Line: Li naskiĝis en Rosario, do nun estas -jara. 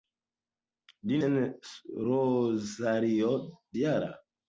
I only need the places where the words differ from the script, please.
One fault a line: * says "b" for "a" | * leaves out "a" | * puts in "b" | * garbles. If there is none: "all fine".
* leaves out "naskiĝis"
* leaves out "do nun estas"